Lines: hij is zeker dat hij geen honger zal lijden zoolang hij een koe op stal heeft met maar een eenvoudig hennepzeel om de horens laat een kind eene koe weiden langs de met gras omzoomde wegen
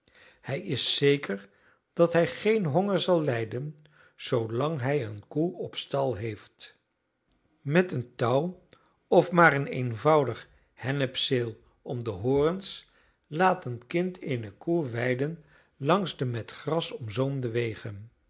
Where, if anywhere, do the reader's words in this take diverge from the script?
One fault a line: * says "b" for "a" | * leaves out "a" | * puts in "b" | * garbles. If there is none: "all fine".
* puts in "een touw of"